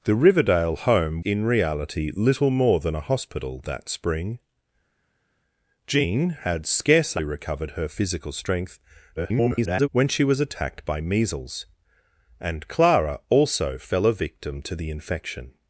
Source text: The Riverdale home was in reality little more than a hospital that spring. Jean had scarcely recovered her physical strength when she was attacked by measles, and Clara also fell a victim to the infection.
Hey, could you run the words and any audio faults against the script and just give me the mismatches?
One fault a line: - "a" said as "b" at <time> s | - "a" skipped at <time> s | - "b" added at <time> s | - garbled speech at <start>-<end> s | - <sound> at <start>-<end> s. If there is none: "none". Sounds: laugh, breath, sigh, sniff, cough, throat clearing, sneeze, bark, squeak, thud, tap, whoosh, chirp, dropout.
- "was" skipped at 1.2 s
- garbled speech at 9.2-9.9 s